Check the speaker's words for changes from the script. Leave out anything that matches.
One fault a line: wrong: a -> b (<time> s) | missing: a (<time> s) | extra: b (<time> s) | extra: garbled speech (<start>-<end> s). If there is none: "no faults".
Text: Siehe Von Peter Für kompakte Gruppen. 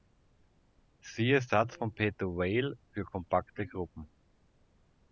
extra: Satz (1.4 s)
extra: Weyl (2.2 s)